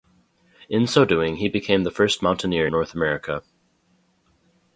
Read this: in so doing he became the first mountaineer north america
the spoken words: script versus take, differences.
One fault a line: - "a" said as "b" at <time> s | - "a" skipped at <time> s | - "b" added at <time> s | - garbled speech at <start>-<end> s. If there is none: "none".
none